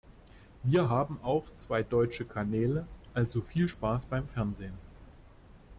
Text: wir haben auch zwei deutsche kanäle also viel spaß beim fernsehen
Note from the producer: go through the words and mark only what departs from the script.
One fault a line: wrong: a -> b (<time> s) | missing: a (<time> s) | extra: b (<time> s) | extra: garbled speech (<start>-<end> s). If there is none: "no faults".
no faults